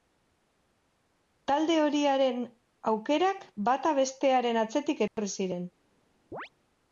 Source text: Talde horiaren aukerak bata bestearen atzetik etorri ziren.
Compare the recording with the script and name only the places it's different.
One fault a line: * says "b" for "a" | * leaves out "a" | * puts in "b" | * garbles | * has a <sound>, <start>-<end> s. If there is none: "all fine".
* has a dropout, 5.1-5.2 s
* has a chirp, 6.3-6.5 s